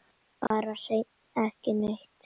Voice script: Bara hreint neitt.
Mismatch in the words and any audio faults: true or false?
true